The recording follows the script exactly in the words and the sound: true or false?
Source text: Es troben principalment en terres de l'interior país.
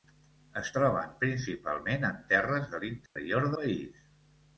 false